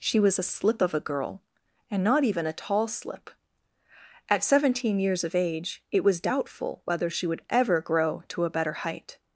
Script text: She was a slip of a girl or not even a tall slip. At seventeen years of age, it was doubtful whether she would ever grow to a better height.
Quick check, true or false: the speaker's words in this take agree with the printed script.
false